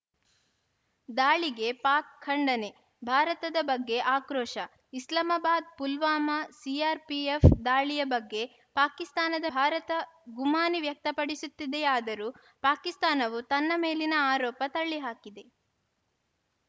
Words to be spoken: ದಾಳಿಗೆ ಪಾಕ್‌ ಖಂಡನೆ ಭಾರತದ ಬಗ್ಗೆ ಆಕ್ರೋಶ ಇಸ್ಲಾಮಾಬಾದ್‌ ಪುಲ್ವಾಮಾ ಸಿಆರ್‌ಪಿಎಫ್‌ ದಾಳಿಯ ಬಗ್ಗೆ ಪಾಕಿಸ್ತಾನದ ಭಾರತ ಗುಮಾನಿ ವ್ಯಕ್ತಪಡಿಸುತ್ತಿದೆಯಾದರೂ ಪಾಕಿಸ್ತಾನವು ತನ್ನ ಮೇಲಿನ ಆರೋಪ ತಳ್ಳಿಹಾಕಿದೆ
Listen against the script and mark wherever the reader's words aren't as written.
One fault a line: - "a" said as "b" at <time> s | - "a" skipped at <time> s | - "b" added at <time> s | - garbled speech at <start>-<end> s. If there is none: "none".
none